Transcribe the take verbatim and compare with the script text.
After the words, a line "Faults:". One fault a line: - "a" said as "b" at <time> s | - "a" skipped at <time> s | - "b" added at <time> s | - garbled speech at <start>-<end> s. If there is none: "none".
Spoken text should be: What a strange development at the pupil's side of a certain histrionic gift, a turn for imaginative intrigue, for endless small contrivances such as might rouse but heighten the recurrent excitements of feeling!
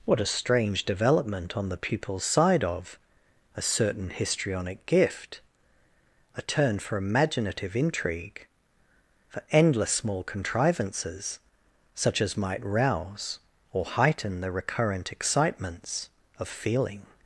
What a strange development on the pupil's side of a certain histrionic gift, a turn for imaginative intrigue, for endless small contrivances such as might rouse or heighten the recurrent excitements of feeling!
Faults:
- "at" said as "on" at 1.6 s
- "but" said as "or" at 13.7 s